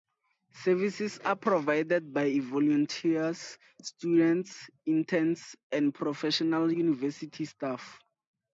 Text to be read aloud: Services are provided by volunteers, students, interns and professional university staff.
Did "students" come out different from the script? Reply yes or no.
no